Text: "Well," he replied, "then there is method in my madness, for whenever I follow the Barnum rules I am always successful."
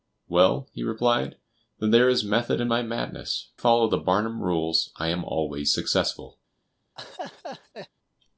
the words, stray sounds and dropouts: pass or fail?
fail